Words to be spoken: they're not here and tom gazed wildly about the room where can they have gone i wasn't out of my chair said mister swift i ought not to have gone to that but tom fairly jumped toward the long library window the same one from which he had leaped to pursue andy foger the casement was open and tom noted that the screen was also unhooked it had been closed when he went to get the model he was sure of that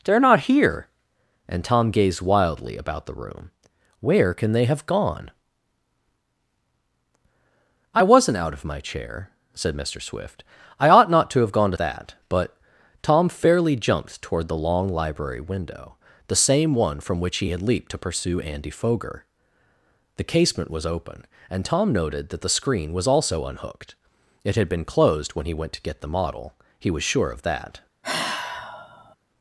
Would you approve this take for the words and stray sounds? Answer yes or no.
no